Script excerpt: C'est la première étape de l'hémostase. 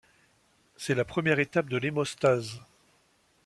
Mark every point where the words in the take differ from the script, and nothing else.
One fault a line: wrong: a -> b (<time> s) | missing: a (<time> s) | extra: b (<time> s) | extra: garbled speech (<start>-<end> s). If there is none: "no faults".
no faults